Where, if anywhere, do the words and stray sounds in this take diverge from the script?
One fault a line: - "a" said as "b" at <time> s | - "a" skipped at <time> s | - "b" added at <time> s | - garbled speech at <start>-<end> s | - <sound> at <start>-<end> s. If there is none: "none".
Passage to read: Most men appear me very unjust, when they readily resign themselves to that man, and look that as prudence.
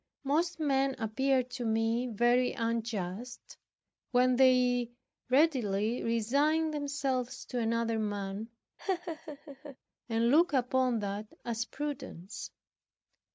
- "to" added at 1.4 s
- "that" said as "another" at 7.6 s
- laugh at 8.8-9.8 s
- "upon" added at 10.5 s